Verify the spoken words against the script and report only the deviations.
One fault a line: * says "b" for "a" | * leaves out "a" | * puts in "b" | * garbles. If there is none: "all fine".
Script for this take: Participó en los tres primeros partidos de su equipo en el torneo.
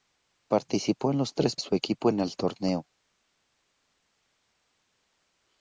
* leaves out "primeros partidos de"